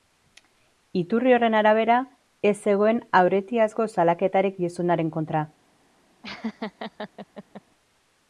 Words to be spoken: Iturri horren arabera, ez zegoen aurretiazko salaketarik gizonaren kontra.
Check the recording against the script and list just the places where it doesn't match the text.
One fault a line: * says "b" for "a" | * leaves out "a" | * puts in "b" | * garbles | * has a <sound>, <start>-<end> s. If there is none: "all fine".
* has a laugh, 6.2-7.6 s